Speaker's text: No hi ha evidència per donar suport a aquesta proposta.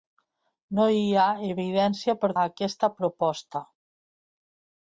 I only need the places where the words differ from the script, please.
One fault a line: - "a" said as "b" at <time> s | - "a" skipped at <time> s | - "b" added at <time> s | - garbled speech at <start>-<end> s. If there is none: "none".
- "donar suport" skipped at 2.3 s